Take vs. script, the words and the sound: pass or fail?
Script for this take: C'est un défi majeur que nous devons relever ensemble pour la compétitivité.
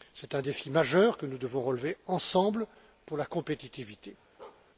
fail